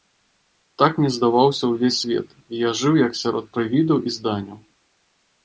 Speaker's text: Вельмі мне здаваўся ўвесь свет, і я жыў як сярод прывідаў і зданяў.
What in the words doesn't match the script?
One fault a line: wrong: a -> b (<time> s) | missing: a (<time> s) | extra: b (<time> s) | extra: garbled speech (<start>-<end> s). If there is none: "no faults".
wrong: Вельмі -> Так (0.8 s)